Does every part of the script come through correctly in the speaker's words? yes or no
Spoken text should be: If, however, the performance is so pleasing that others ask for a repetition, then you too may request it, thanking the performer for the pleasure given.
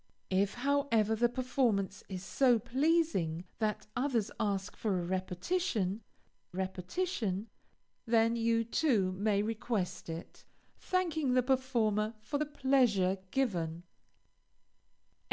no